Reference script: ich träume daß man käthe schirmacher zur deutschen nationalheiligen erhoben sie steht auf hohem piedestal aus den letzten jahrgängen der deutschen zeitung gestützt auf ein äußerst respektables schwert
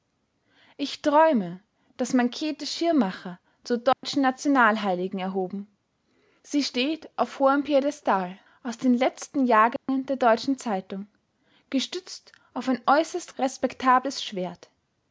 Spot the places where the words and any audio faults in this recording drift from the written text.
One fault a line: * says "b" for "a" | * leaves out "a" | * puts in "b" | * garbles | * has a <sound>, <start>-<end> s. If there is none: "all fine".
* has a dropout, 3.9-4.0 s
* has a dropout, 9.8-9.9 s